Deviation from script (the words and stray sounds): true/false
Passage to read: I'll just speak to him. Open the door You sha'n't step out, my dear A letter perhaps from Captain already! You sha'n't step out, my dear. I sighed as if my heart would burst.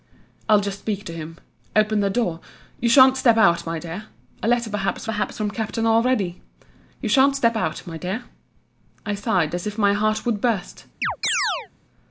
true